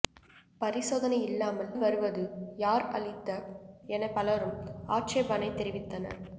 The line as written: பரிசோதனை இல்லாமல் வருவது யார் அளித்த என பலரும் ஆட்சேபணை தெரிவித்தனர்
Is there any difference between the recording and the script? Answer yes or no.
no